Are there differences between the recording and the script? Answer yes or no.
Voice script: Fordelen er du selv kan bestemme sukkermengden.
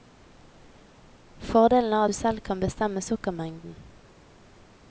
no